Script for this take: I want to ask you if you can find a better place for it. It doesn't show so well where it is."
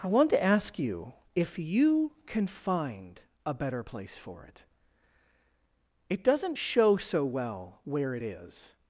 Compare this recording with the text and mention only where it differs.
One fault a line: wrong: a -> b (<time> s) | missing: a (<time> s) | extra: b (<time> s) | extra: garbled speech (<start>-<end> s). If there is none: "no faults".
no faults